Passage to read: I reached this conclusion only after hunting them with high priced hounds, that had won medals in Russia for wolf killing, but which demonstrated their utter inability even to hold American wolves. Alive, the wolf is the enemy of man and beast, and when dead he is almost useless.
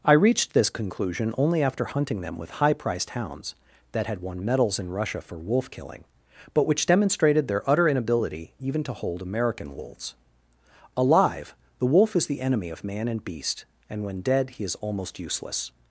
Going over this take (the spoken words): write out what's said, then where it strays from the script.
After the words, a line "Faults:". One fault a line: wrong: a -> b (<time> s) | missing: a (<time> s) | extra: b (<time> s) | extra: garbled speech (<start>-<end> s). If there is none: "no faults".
I reached this conclusion only after hunting them with high priced hounds, that had won medals in Russia for wolf killing, but which demonstrated their utter inability even to hold American wolves. Alive, the wolf is the enemy of man and beast, and when dead he is almost useless.
Faults:
no faults